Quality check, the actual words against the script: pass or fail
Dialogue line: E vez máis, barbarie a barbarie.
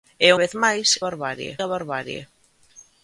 pass